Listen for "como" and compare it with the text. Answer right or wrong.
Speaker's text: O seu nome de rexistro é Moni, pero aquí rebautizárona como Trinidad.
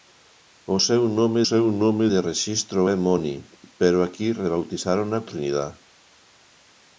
wrong